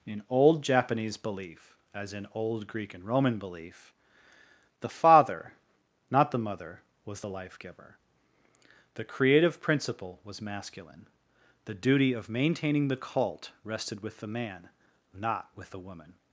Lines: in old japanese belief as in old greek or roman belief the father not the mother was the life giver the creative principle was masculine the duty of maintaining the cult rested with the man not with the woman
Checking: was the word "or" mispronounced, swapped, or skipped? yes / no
yes